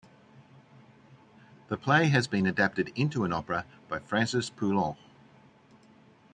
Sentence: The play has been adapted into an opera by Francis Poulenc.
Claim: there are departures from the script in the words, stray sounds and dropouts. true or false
false